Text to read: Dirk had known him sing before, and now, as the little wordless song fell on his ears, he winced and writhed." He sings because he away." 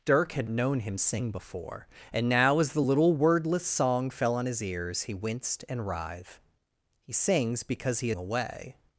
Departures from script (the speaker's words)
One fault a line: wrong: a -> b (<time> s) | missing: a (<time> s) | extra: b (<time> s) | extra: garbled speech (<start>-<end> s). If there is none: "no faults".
no faults